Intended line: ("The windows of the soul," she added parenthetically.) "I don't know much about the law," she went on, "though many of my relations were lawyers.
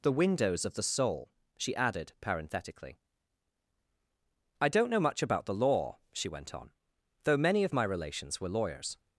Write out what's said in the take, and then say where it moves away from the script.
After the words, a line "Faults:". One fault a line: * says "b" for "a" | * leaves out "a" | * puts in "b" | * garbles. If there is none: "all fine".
("The windows of the soul," she added parenthetically.) "I don't know much about the law," she went on, "though many of my relations were lawyers.
Faults:
all fine